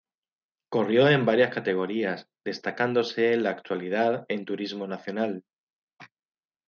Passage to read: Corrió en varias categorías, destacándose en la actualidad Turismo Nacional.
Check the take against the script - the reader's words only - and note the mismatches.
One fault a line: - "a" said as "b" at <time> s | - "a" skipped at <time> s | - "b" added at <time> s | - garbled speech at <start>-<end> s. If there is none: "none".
- "en" added at 4.3 s